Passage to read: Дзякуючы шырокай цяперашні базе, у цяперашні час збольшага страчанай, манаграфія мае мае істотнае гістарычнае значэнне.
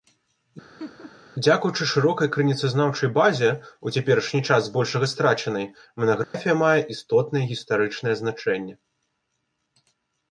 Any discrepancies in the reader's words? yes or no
yes